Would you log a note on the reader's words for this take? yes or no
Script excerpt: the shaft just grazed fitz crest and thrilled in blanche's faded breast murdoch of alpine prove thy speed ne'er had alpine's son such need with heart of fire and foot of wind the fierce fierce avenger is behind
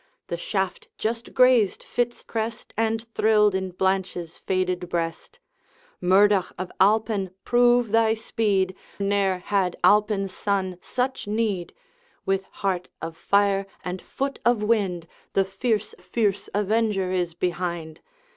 no